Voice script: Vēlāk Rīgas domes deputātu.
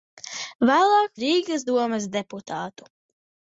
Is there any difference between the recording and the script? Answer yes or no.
no